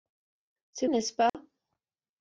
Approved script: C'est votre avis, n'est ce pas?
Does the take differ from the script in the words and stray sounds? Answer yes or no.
yes